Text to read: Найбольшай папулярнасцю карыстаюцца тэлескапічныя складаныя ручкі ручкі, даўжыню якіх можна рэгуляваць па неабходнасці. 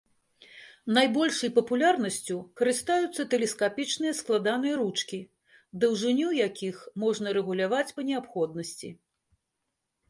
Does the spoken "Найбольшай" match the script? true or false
true